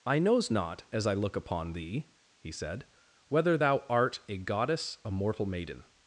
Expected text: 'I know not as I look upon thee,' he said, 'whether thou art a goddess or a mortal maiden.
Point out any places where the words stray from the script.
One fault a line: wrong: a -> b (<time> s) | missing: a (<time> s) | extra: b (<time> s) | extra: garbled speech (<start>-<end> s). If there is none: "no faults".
wrong: know -> knows (0.2 s)
missing: or (5.0 s)